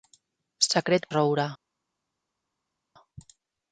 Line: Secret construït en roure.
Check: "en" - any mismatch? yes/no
yes